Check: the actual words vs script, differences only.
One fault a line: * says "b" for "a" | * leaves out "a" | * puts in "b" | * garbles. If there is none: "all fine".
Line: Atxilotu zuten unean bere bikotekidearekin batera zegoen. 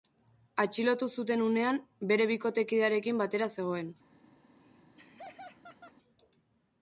all fine